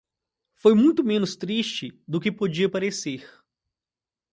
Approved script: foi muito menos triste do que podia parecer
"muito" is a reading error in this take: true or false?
false